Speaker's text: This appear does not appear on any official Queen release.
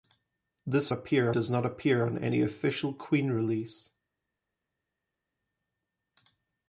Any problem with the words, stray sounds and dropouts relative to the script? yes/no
no